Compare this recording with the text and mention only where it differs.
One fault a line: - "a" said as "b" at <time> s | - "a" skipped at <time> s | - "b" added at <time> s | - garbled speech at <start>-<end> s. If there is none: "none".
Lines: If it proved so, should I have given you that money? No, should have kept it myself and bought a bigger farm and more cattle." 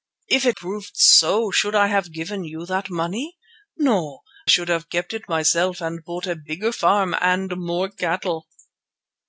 none